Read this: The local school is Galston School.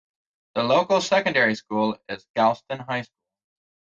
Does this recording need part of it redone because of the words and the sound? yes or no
yes